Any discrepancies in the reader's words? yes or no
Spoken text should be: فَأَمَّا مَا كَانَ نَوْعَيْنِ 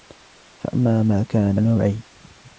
no